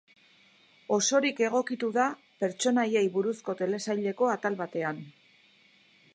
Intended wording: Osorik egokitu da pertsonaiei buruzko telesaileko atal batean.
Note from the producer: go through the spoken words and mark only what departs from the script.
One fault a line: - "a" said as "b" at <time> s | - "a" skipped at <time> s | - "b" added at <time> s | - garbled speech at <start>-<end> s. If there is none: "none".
none